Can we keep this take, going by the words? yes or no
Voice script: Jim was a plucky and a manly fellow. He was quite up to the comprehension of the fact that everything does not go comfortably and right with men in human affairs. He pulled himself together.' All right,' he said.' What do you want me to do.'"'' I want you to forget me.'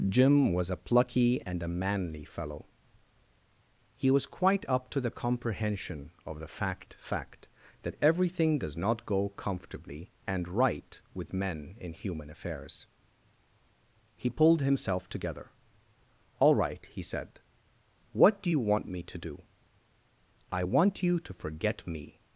no